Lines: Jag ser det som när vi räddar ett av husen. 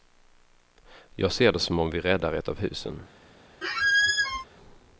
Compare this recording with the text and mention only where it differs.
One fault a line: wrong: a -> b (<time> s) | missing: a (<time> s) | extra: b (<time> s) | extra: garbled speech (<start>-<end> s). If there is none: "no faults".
wrong: när -> om (1.8 s)